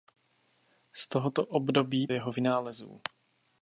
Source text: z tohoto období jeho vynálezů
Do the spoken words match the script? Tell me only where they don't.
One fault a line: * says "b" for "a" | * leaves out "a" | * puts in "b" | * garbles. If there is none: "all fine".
all fine